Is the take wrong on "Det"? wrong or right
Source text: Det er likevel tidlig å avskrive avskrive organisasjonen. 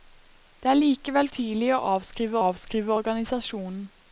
right